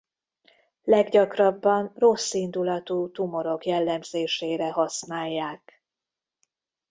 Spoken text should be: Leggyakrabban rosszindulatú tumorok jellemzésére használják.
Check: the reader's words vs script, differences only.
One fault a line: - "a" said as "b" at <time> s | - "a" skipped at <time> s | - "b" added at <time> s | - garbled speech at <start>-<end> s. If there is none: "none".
none